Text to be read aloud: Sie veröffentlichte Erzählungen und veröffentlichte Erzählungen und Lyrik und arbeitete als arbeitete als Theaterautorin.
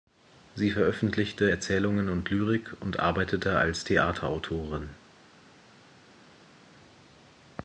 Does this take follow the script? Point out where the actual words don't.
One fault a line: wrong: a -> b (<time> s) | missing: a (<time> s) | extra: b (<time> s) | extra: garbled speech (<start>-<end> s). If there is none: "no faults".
missing: veröffentlichte Erzählungen und (2.3 s)
missing: arbeitete als (3.9 s)